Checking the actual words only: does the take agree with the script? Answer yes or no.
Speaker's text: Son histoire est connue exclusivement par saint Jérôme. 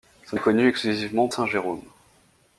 no